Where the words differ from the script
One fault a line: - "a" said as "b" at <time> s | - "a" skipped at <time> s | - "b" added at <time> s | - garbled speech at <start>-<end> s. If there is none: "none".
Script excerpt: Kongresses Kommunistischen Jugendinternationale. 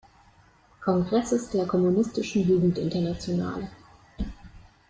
- "der" added at 1.5 s